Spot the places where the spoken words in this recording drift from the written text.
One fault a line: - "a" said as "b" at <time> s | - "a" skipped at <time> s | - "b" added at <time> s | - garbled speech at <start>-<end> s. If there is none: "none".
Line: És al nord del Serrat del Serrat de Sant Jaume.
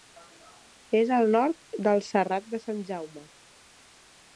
- "del Serrat" skipped at 2.5 s